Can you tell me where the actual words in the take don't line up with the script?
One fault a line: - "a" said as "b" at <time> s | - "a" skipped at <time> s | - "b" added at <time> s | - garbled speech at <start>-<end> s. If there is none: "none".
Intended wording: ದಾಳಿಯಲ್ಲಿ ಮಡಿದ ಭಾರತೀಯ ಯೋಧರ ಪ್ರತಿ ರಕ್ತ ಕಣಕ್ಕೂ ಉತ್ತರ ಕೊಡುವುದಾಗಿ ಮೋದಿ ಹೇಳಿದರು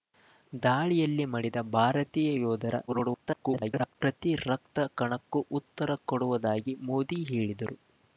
- garbled speech at 2.9-4.0 s